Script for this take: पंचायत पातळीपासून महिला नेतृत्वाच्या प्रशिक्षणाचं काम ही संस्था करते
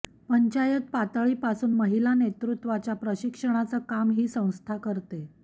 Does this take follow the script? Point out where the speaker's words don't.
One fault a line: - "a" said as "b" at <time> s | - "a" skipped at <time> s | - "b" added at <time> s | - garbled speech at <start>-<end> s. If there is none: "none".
none